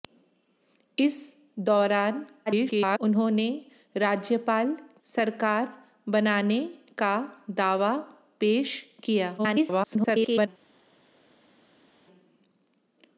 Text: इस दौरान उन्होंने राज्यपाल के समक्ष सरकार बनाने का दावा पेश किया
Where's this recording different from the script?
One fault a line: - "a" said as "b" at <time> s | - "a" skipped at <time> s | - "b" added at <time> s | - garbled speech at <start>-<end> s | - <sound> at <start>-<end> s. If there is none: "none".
- garbled speech at 2.5-3.0 s
- "के समक्ष" skipped at 4.7 s
- garbled speech at 9.4-10.5 s